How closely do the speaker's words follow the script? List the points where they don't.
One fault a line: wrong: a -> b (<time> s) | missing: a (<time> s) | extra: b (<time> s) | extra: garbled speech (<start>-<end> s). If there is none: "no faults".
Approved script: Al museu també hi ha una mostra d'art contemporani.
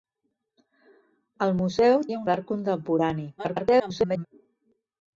missing: també (2.1 s)
missing: una mostra (2.2 s)
extra: garbled speech (3.4-4.3 s)